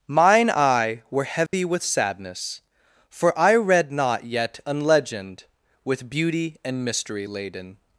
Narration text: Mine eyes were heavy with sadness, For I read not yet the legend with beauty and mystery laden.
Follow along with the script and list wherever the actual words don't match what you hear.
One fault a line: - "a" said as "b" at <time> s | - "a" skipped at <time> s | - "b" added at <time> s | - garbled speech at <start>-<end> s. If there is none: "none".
- "eyes" said as "eye" at 0.5 s
- "the" said as "an" at 4.7 s